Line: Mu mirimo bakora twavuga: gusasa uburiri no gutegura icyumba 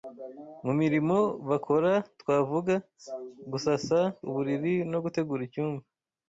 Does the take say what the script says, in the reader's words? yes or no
yes